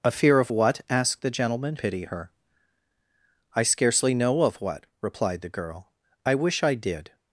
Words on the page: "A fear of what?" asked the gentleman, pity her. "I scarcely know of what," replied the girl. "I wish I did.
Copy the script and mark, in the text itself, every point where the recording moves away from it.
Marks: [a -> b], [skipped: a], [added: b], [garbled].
"A fear of what?" asked the gentleman, pity her. "I scarcely know of what," replied the girl. "I wish I did.